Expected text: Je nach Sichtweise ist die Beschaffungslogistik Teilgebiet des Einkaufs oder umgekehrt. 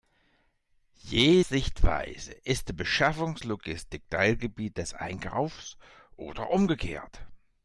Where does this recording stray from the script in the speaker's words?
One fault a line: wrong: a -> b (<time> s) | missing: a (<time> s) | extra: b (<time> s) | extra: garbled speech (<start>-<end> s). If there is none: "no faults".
missing: nach (1.4 s)